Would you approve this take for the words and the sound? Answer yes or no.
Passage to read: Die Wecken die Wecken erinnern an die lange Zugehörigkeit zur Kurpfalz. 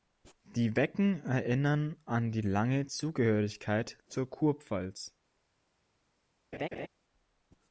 no